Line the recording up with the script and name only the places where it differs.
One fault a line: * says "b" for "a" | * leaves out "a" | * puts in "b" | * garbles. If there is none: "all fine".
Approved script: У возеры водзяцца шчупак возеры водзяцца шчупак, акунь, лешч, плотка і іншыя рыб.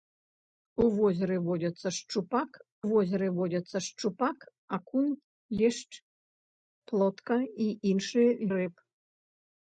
all fine